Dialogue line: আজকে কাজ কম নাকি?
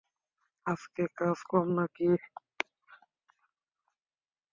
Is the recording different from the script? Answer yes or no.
no